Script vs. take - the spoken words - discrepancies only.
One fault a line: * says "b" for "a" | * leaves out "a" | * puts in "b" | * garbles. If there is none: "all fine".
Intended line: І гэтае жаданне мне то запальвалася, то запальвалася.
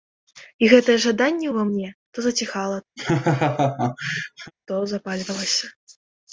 * puts in "ўва"
* says "заціхала" for "запальвалася"